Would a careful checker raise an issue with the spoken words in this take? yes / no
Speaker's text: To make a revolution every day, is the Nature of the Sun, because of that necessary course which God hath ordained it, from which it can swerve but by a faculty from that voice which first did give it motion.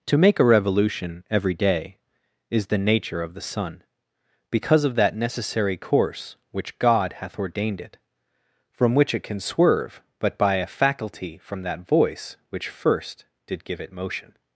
no